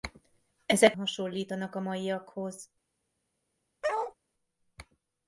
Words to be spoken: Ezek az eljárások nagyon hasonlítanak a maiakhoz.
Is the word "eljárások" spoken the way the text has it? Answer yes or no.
no